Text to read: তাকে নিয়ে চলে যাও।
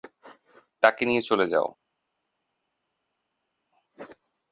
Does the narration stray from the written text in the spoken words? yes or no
no